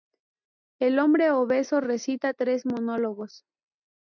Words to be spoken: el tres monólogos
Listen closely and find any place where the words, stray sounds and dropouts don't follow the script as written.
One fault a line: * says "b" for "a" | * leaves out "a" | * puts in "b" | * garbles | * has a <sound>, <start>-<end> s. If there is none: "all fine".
* puts in "hombre obeso recita"